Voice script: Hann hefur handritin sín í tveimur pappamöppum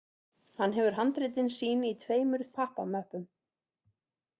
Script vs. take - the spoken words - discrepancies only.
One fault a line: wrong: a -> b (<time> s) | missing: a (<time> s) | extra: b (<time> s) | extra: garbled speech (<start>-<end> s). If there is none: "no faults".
no faults